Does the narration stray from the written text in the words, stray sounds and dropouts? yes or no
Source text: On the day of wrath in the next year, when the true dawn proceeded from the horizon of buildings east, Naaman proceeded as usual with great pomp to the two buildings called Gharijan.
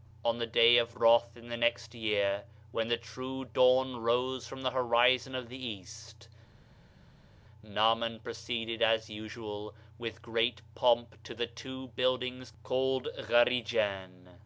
yes